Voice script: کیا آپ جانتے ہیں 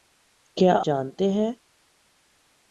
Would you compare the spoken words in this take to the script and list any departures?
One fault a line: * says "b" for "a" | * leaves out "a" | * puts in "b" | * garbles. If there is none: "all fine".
* leaves out "آپ"